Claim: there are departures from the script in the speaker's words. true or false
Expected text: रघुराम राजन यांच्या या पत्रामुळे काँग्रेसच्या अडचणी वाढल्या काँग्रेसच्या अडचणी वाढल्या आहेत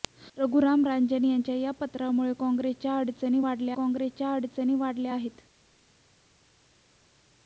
false